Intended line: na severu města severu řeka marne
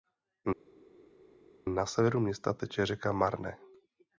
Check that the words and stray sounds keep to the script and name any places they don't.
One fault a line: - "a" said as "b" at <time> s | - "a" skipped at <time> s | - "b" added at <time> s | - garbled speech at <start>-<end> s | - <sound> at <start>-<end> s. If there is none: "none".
- "severu" said as "teče" at 2.5 s